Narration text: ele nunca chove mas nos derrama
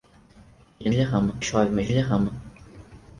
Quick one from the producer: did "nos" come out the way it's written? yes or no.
no